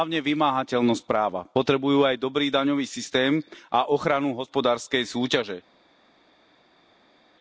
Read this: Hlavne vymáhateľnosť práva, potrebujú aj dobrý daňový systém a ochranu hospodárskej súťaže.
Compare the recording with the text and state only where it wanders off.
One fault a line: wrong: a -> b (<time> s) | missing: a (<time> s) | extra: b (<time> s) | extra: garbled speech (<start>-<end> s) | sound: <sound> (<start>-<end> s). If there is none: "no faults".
no faults